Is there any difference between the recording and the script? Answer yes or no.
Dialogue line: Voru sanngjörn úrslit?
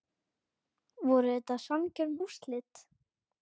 yes